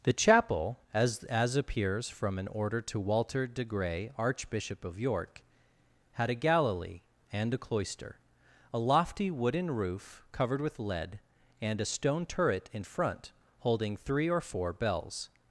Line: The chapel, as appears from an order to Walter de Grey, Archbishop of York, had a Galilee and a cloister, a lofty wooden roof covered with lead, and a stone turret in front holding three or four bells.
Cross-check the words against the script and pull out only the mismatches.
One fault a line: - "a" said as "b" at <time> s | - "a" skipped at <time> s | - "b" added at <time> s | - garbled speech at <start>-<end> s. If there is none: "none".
- "as" added at 1.2 s